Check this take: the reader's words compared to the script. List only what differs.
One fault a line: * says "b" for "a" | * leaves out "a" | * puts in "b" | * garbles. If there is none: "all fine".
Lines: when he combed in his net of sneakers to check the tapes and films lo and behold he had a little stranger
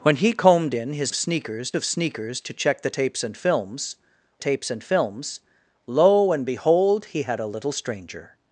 * says "sneakers" for "net"
* puts in "tapes and films"